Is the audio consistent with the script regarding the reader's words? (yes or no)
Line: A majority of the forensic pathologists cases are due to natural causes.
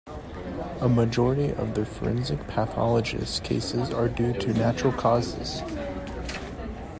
yes